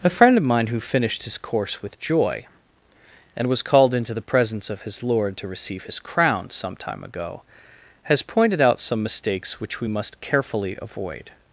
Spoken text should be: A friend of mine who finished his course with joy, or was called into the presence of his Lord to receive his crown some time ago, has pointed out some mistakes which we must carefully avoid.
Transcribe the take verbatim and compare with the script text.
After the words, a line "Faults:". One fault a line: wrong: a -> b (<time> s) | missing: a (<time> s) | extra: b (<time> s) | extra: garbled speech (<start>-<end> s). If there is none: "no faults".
A friend of mine who finished his course with joy, and was called into the presence of his Lord to receive his crown some time ago, has pointed out some mistakes which we must carefully avoid.
Faults:
wrong: or -> and (3.4 s)